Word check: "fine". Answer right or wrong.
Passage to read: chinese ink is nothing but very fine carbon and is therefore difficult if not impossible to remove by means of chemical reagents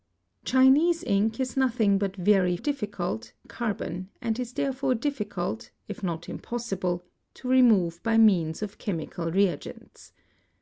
wrong